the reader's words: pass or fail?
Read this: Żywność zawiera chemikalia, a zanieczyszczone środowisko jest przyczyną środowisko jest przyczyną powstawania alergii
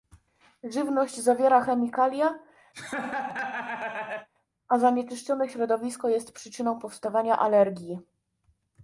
fail